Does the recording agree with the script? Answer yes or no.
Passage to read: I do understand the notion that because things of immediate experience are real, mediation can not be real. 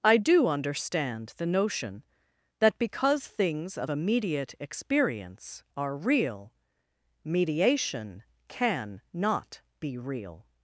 yes